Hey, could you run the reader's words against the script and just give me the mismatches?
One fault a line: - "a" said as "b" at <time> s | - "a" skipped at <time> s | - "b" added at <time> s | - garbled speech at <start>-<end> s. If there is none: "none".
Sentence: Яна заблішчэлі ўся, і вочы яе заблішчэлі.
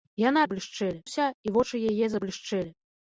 none